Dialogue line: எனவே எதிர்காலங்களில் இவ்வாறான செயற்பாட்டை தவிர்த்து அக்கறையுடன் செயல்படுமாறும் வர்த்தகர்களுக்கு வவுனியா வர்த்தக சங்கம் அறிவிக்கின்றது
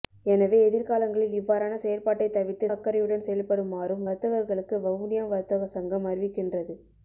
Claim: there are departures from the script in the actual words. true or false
false